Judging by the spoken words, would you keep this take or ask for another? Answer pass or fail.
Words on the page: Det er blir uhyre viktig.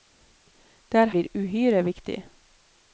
pass